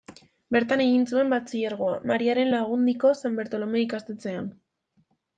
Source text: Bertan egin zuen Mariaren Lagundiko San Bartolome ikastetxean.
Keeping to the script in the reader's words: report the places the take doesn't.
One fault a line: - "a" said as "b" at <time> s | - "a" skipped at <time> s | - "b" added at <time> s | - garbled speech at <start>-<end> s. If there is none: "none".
- "batxilergoa" added at 1.3 s